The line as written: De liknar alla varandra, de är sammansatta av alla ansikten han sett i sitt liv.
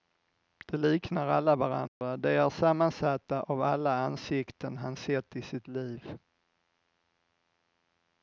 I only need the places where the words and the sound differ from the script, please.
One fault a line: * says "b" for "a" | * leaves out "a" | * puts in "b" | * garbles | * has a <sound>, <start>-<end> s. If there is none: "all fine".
* has a dropout, 1.9-2.0 s